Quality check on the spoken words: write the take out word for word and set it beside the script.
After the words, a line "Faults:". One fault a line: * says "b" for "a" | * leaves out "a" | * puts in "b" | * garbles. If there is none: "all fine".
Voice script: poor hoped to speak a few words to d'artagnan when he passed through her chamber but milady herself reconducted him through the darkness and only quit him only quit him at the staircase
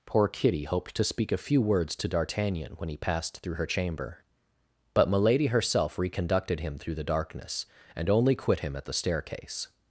poor kitty hoped to speak a few words to d'artagnan when he passed through her chamber but milady herself reconducted him through the darkness and only quit him at the staircase
Faults:
* puts in "kitty"
* leaves out "only quit him"